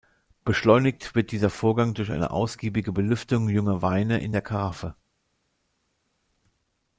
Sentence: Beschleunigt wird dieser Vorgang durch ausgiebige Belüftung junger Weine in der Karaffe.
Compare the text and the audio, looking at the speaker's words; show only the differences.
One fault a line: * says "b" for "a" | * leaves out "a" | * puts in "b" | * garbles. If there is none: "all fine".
* puts in "eine"